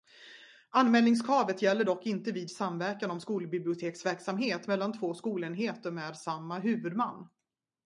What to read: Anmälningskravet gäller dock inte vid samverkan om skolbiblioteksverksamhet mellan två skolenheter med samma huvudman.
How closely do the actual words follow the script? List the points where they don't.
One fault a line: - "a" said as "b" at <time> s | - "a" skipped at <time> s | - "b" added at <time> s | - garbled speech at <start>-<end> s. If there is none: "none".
none